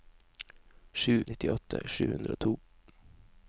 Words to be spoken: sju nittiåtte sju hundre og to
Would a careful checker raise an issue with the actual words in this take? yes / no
no